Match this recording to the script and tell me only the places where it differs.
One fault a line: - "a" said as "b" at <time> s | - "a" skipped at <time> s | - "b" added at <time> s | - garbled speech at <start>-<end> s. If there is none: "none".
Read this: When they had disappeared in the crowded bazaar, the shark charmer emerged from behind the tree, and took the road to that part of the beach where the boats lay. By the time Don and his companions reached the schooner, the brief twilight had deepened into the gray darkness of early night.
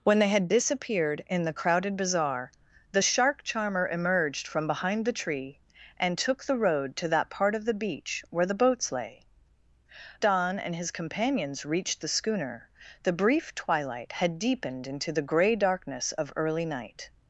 - "By the time" skipped at 9.3 s